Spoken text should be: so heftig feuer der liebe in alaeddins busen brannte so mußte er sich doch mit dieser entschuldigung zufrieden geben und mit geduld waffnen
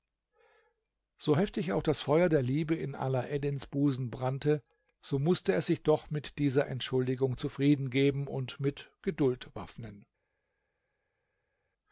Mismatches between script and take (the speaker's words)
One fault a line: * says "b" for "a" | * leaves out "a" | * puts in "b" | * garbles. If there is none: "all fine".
* puts in "auch das"